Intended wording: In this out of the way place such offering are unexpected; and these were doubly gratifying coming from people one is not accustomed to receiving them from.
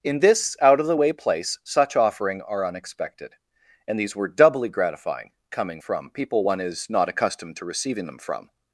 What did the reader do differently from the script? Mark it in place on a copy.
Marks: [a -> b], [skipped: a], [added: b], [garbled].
In this out of the way place such offering are unexpected; and these were doubly gratifying coming from people one is not accustomed to receiving them from.